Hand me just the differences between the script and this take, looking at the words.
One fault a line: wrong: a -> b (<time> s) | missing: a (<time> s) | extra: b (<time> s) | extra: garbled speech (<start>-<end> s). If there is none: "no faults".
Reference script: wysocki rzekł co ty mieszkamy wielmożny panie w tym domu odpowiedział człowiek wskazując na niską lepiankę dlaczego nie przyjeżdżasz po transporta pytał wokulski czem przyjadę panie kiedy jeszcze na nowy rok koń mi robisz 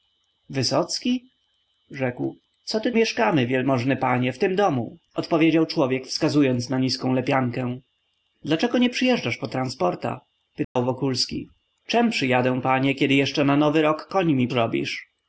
no faults